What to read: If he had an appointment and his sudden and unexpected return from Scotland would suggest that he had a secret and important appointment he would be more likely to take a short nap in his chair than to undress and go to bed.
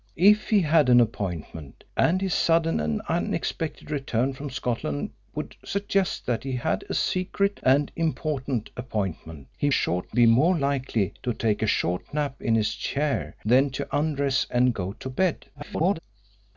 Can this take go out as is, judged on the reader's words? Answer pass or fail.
fail